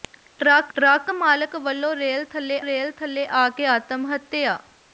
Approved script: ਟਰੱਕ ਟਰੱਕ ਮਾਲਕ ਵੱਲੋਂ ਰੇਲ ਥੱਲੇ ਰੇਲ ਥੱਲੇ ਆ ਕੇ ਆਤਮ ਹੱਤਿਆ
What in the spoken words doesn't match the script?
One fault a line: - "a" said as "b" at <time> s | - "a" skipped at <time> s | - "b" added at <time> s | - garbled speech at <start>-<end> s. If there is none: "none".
none